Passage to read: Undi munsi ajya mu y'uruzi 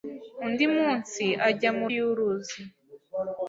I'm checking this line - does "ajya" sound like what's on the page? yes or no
yes